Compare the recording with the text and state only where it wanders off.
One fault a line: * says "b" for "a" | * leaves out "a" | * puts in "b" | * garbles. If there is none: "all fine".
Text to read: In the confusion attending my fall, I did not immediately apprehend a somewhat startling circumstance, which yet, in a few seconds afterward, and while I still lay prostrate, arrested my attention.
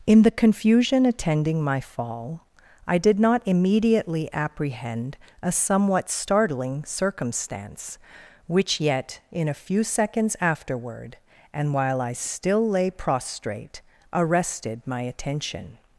all fine